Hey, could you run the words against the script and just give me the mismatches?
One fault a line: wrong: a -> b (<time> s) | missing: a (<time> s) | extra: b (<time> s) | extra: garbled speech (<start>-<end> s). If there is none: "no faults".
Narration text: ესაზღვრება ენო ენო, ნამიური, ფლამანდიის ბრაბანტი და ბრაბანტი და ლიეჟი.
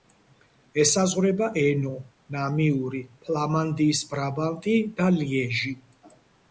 missing: ენო (1.9 s)
missing: ბრაბანტი და (5.1 s)